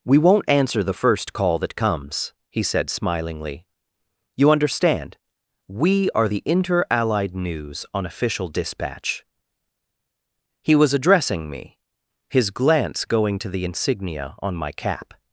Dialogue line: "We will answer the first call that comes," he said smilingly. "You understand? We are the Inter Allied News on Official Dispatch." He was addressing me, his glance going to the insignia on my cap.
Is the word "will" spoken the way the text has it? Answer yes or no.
no